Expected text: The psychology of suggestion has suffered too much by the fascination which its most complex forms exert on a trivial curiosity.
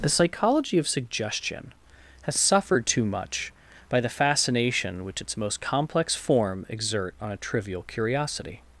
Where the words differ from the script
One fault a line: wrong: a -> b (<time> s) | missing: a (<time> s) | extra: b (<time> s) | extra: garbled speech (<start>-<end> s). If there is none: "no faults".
wrong: forms -> form (6.2 s)